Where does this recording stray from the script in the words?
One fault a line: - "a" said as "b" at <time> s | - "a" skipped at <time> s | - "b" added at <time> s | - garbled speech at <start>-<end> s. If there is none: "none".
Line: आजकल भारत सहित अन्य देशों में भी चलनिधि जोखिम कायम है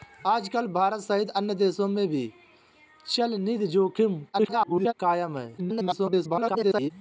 - garbled speech at 4.3-4.9 s
- garbled speech at 5.6-6.9 s